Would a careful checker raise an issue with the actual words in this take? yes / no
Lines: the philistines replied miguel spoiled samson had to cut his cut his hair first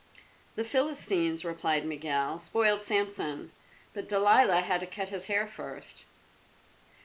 yes